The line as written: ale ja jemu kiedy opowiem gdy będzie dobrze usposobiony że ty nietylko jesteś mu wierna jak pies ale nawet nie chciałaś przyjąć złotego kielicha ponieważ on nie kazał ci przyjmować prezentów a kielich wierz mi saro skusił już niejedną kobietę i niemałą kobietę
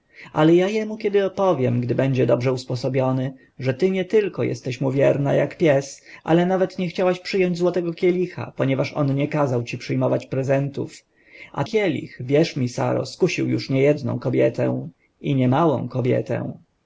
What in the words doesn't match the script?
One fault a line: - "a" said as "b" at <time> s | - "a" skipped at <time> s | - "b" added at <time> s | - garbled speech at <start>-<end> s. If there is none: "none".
none